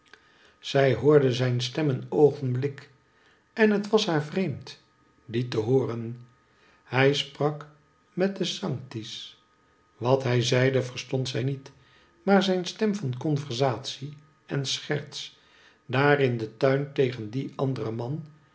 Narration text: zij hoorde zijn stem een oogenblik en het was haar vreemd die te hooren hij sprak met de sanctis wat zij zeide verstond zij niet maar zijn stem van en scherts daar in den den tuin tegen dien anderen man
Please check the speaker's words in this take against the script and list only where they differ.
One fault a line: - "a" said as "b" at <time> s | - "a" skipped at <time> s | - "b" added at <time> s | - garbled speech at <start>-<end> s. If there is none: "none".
- "zij" said as "hij" at 10.2 s
- "conversatie" added at 13.2 s
- "den" skipped at 16.6 s